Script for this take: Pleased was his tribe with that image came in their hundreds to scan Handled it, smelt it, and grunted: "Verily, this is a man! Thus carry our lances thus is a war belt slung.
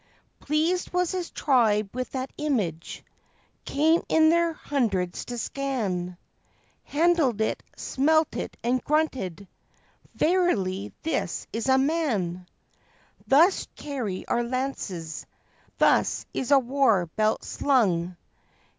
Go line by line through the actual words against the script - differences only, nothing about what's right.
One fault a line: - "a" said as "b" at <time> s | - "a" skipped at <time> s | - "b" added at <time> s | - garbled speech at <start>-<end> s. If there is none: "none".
none